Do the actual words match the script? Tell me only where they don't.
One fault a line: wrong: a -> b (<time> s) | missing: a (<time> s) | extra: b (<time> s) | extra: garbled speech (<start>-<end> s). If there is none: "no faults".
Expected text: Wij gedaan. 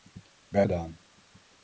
no faults